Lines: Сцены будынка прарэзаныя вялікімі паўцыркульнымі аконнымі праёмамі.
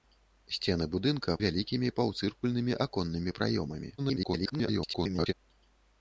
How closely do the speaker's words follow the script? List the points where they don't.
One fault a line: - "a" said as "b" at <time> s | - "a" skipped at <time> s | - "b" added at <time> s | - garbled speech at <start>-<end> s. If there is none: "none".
- "прарэзаныя" skipped at 1.4 s
- garbled speech at 4.0-5.3 s